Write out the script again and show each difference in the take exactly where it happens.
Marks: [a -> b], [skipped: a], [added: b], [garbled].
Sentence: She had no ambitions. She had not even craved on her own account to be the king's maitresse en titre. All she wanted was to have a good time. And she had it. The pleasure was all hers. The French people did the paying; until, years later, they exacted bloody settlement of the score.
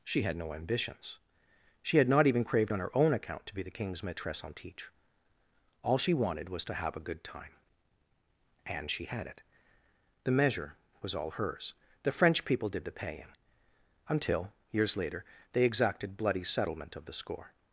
She had no ambitions. She had not even craved on her own account to be the king's maitresse en titre. All she wanted was to have a good time. And she had it. The [pleasure -> measure] was all hers. The French people did the paying; until, years later, they exacted bloody settlement of the score.